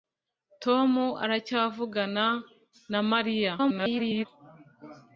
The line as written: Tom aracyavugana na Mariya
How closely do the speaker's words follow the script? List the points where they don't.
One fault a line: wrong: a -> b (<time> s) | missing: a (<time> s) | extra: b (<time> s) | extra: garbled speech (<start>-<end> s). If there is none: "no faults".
extra: garbled speech (3.6-4.3 s)